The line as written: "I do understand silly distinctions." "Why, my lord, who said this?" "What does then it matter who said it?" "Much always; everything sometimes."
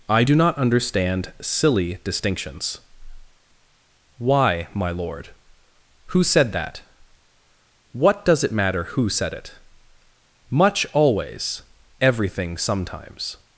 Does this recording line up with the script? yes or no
no